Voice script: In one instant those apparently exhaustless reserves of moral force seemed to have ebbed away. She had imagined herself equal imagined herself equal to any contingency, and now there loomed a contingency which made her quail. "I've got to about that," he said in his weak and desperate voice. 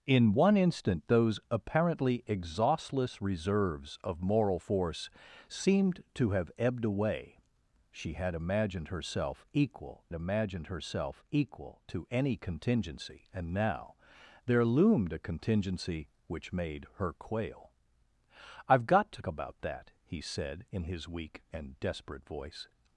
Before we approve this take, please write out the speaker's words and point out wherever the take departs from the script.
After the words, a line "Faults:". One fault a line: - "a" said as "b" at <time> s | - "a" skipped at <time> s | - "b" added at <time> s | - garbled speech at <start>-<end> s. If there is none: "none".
In one instant those apparently exhaustless reserves of moral force seemed to have ebbed away. She had imagined herself equal imagined herself equal to any contingency, and now there loomed a contingency which made her quail. "I've got to about that," he said in his weak and desperate voice.
Faults:
none